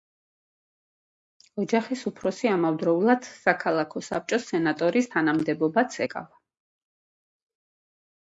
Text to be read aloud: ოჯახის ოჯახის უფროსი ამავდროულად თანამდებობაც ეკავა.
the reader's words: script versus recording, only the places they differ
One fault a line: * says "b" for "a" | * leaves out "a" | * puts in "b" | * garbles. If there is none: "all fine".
* leaves out "ოჯახის"
* puts in "საქალაქო საბჭოს სენატორის"